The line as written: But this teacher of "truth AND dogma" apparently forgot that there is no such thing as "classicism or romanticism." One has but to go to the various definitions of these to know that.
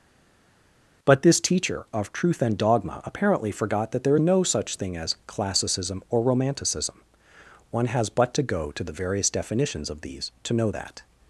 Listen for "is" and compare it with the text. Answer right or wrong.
wrong